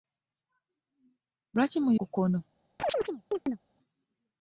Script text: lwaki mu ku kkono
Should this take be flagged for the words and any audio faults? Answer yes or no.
yes